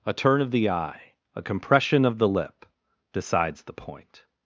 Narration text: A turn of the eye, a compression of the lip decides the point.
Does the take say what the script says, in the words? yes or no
yes